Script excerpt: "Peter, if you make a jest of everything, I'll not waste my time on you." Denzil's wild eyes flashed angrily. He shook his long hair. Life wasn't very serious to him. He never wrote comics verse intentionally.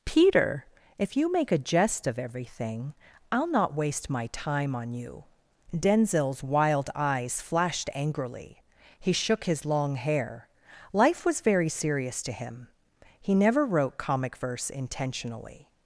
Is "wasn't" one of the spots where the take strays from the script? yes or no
yes